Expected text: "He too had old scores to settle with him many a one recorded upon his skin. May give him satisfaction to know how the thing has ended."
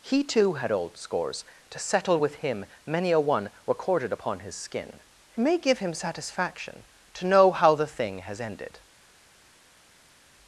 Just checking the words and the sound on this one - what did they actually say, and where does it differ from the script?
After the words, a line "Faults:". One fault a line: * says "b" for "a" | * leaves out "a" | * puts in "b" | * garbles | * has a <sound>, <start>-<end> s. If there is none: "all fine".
"He too had old scores to settle with him many a one recorded upon his skin. May give him satisfaction to know how the thing has ended."
Faults:
all fine